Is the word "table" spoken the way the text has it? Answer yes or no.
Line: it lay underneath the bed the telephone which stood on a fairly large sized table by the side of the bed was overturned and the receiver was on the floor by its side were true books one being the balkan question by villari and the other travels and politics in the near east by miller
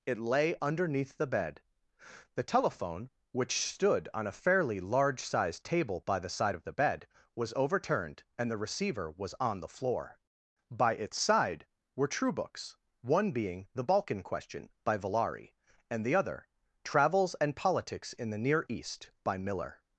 yes